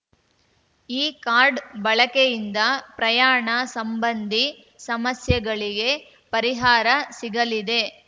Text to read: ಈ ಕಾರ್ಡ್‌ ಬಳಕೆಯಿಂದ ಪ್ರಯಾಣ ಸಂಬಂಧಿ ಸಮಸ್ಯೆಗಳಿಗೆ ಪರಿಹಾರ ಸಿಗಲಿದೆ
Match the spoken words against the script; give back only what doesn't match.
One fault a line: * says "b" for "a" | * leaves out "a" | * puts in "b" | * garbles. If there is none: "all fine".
all fine